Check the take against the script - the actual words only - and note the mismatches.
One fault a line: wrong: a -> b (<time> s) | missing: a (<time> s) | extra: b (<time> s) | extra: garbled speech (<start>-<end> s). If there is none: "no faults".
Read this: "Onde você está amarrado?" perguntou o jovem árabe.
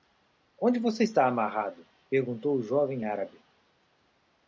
no faults